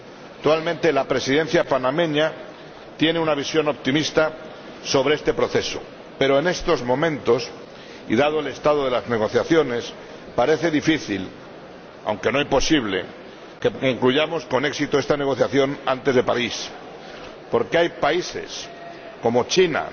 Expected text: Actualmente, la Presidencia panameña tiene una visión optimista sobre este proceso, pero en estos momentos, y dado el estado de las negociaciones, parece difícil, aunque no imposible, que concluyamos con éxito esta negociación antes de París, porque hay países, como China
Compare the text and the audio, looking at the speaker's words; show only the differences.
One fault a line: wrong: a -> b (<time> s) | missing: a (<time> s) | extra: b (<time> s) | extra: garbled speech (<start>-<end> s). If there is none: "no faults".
no faults